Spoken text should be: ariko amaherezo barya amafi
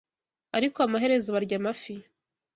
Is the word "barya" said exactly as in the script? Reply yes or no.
yes